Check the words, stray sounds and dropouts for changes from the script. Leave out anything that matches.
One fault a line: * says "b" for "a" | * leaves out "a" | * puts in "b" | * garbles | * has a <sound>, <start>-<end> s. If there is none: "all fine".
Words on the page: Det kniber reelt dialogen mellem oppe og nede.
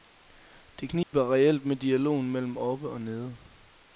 * has a dropout, 1.0-1.1 s
* puts in "med"